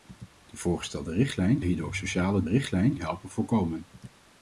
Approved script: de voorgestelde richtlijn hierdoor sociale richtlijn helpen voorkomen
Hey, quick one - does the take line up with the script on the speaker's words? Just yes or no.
yes